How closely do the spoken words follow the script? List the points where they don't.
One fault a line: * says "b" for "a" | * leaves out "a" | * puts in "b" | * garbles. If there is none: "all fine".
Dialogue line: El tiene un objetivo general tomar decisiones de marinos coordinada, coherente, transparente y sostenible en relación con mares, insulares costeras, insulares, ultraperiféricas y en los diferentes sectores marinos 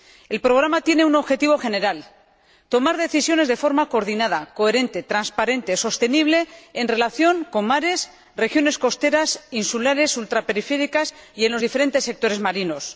* puts in "programa"
* says "forma" for "marinos"
* says "regiones" for "insulares"